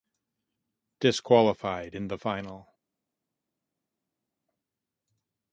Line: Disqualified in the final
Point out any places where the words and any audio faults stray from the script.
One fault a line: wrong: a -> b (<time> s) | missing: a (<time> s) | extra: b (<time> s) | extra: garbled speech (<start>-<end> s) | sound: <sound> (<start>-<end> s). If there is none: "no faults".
no faults